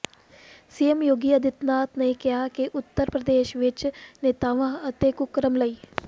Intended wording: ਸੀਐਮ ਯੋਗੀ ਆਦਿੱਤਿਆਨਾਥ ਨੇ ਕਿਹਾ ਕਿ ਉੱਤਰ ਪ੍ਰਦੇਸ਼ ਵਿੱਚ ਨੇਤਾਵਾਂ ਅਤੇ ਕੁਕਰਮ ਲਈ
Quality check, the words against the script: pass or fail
pass